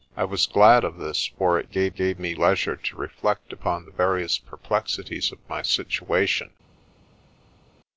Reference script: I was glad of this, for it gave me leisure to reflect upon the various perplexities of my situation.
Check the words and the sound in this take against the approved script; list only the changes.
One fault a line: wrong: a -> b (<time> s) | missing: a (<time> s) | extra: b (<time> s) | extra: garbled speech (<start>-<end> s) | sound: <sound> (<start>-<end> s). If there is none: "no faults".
extra: gave (1.9 s)